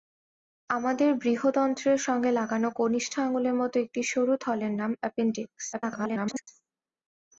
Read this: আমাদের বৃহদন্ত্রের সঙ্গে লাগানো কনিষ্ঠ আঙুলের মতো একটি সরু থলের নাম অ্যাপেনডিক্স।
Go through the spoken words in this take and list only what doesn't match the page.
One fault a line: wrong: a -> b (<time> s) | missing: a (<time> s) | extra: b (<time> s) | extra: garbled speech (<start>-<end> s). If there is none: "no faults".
extra: garbled speech (5.7-6.5 s)